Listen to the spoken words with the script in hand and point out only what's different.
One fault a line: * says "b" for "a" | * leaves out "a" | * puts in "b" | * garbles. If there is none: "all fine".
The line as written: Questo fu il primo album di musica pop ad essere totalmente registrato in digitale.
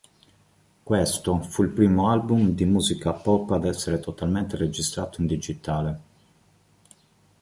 all fine